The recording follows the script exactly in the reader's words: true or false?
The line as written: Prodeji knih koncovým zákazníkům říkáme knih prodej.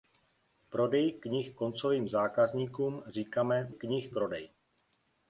true